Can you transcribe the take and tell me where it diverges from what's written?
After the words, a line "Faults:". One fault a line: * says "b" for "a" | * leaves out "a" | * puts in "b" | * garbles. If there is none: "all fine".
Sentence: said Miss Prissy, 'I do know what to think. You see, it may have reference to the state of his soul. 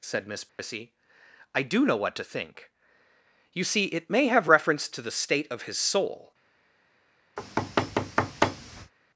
said Miss Prissy, 'I do know what to think. You see, it may have reference to the state of his soul.
Faults:
all fine